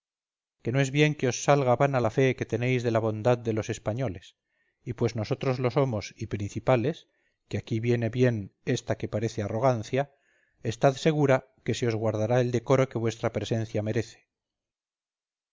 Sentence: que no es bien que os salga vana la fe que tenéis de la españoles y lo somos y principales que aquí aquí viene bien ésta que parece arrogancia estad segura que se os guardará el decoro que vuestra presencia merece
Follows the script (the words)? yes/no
no